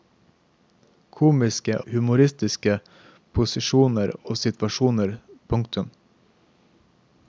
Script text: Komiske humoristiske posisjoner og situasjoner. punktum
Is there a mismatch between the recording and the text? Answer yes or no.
no